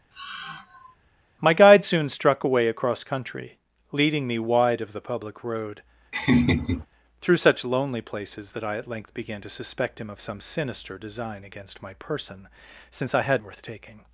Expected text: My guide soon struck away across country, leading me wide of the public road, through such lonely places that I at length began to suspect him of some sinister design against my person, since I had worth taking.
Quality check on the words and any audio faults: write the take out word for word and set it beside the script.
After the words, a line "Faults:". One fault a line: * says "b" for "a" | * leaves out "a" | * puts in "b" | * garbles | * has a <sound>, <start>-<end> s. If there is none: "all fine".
My guide soon struck away across country, leading me wide of the public road, through such lonely places that I at length began to suspect him of some sinister design against my person, since I had worth taking.
Faults:
* has a sigh, 0.1-1.0 s
* has a laugh, 6.1-6.9 s